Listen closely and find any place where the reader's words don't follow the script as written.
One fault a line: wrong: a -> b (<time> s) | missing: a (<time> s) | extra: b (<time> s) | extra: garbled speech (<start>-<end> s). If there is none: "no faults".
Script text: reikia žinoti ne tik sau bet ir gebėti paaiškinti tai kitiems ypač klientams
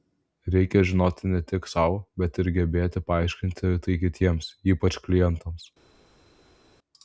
no faults